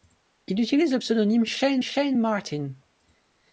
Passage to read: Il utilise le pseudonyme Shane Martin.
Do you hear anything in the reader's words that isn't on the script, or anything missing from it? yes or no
yes